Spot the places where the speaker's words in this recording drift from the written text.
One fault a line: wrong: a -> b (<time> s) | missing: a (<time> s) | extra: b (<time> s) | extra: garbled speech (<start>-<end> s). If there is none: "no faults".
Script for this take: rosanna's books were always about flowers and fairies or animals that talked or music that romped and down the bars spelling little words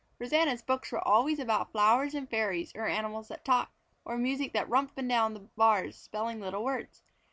no faults